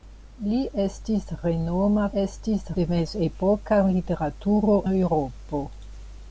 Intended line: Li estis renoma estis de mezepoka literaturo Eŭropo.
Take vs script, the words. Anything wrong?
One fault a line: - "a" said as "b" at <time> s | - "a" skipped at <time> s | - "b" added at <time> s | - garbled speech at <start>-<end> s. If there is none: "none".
none